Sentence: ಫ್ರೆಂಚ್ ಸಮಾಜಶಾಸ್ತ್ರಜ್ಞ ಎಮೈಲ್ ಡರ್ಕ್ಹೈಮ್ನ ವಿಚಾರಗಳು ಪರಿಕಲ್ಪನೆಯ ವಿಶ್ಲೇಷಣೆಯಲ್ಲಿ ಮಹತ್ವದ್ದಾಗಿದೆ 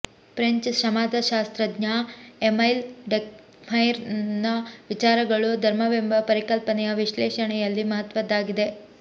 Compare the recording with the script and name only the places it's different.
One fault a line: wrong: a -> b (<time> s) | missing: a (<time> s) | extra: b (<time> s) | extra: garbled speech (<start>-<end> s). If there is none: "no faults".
extra: ಧರ್ಮವೆಂಬ (5.7 s)